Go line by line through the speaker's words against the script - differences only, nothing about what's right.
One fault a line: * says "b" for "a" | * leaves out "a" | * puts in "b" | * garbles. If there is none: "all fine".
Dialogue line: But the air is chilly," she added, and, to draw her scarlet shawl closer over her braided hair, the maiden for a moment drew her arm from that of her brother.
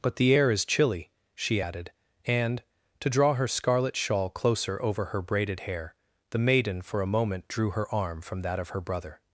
all fine